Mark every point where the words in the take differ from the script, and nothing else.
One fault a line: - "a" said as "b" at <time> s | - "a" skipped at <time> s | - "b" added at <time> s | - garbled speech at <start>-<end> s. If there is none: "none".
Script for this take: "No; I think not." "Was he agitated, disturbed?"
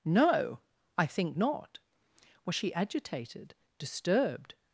- "he" said as "she" at 2.5 s